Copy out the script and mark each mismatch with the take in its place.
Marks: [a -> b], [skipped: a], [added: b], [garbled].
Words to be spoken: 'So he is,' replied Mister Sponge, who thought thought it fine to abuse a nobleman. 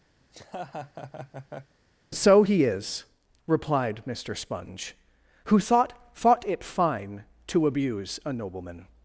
'So he is,' replied Mister Sponge, who thought thought it fine to abuse a nobleman.